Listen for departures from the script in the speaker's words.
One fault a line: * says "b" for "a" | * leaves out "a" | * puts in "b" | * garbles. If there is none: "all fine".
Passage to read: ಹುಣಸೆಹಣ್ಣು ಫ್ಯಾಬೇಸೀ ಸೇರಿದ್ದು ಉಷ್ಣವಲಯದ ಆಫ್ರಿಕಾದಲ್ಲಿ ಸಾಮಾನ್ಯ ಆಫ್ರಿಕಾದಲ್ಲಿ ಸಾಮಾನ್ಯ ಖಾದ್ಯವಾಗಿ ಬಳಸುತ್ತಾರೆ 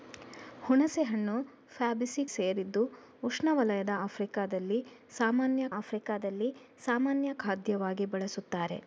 all fine